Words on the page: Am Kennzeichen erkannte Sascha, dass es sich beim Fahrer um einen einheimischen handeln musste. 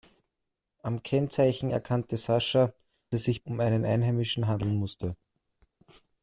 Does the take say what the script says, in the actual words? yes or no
no